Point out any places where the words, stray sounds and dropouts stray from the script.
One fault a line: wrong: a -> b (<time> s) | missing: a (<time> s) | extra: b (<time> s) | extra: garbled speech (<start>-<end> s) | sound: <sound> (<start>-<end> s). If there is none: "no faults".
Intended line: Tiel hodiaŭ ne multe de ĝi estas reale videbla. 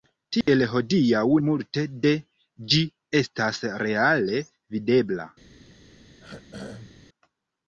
sound: dropout (0.4-0.5 s)
missing: ne (1.2 s)
sound: throat clearing (6.2-7.1 s)